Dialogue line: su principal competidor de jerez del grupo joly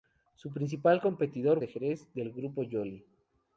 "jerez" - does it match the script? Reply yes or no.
yes